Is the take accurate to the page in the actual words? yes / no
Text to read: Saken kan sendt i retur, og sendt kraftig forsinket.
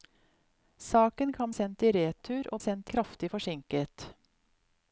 yes